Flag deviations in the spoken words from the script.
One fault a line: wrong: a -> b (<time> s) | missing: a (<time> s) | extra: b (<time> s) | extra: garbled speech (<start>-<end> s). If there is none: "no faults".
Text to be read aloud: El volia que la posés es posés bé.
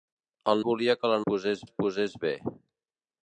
no faults